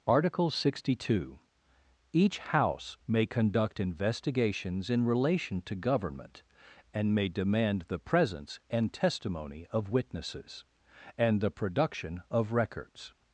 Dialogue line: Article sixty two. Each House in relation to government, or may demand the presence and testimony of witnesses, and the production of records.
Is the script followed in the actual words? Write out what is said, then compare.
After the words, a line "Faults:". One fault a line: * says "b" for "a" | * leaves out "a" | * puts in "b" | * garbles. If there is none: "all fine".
Article sixty two. Each House may conduct investigations in relation to government, and may demand the presence and testimony of witnesses, and the production of records.
Faults:
* puts in "may conduct investigations"
* says "and" for "or"